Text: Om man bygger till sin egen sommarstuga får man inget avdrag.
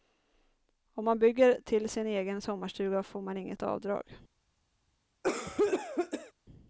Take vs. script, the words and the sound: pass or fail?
fail